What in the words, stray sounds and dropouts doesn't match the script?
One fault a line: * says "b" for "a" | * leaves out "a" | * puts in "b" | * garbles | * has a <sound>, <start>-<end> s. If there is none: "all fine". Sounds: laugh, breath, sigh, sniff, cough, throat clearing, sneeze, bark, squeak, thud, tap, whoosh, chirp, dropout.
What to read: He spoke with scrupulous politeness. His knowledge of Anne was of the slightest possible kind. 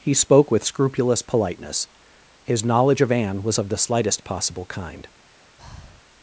* has a breath, 5.6-6.0 s